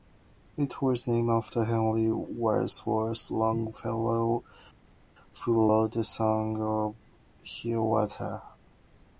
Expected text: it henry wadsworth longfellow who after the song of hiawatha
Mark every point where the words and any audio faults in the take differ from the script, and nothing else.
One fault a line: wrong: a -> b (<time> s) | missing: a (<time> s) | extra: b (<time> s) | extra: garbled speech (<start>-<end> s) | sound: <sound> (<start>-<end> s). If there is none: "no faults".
extra: was named after (0.8 s)
wrong: after -> wrote (5.7 s)